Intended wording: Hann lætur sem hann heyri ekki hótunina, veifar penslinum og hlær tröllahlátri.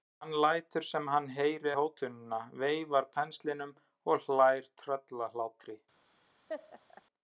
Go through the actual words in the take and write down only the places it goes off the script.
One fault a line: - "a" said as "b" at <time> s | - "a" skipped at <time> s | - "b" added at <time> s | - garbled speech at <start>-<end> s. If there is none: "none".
- "ekki" skipped at 1.7 s